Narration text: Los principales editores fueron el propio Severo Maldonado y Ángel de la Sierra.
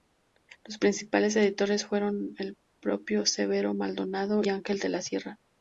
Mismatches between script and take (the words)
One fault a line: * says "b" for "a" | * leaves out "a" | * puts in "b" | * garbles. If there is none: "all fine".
* leaves out "y"